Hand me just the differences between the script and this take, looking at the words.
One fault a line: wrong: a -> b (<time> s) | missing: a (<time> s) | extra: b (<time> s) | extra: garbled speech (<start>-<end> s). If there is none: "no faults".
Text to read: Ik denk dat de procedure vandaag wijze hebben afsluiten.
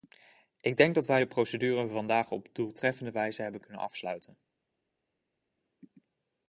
extra: wij (1.1 s)
extra: op doeltreffende (2.3 s)
extra: kunnen (3.6 s)